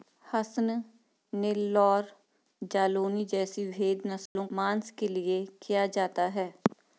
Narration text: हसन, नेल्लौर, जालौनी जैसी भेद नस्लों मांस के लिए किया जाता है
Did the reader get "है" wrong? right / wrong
right